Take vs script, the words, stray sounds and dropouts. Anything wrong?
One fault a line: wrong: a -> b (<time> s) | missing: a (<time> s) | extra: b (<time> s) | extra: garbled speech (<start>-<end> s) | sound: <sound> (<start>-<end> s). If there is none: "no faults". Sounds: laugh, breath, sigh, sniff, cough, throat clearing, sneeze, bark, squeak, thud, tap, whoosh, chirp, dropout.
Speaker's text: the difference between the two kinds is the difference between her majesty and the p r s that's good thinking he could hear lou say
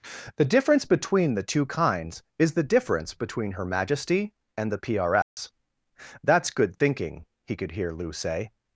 sound: dropout (5.2-5.4 s)